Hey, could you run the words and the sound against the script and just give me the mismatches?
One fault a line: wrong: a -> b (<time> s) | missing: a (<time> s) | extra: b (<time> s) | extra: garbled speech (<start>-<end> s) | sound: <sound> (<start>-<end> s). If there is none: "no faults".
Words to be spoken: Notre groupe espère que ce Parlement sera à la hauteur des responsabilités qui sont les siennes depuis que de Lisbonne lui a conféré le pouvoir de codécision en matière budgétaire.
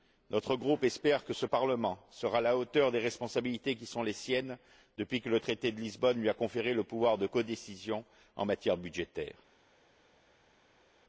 extra: le traité (5.3 s)